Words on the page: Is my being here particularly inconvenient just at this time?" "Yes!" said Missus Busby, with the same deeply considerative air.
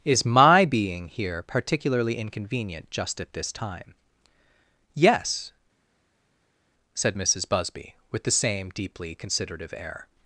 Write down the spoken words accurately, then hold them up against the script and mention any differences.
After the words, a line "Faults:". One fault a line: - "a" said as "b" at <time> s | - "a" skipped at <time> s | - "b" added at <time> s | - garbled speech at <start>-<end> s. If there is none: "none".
Is my being here particularly inconvenient just at this time?" "Yes!" said Missus Busby, with the same deeply considerative air.
Faults:
none